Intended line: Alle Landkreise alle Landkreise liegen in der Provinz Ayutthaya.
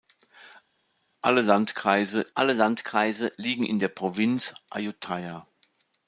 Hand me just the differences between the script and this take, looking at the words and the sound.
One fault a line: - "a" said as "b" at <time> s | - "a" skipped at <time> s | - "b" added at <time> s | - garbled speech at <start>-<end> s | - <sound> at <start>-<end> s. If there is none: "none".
none